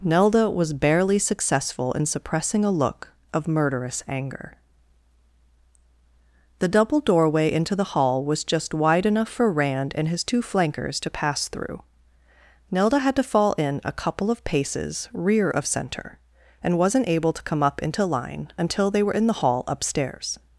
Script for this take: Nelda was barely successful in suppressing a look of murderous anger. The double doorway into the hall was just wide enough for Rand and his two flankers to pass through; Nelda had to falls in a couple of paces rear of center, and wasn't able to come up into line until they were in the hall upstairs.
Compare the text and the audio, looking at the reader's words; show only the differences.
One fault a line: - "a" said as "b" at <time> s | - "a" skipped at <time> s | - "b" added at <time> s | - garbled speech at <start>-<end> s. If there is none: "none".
- "falls" said as "fall" at 13.2 s